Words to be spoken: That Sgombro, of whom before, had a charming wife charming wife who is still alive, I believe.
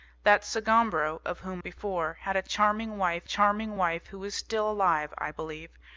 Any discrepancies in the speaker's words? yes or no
no